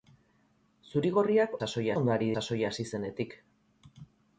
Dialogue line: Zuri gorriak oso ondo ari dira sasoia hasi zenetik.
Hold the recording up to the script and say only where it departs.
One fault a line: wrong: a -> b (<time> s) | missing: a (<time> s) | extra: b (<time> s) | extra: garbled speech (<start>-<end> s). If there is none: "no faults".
wrong: oso -> sasoia (1.6 s)
missing: dira (2.3 s)